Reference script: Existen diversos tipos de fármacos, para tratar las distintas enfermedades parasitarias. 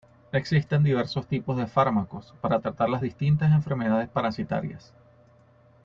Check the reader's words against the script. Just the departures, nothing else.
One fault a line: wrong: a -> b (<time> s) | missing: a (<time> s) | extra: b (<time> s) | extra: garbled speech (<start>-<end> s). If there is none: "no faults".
no faults